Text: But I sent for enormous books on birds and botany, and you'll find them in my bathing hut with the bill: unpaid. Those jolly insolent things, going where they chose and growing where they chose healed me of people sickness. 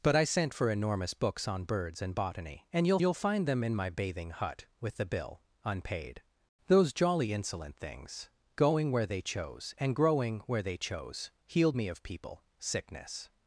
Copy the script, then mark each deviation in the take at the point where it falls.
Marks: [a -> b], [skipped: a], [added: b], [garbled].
But I sent for enormous books on birds and botany, and you'll [added: you'll] find them in my bathing hut with the bill: unpaid. Those jolly insolent things, going where they chose and growing where they chose healed me of people sickness.